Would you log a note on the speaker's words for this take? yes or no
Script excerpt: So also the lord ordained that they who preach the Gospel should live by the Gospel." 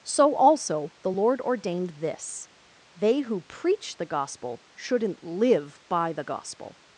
yes